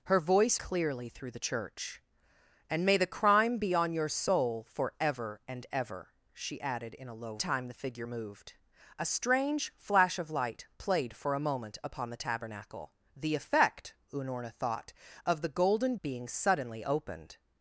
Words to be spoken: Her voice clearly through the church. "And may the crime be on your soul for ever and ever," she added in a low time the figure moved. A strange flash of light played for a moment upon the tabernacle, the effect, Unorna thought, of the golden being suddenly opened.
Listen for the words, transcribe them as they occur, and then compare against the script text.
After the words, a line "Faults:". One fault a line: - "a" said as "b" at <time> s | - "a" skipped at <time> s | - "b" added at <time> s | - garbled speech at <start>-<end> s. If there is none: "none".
Her voice clearly through the church. "And may the crime be on your soul for ever and ever," she added in a low time the figure moved. A strange flash of light played for a moment upon the tabernacle, the effect, Unorna thought, of the golden being suddenly opened.
Faults:
none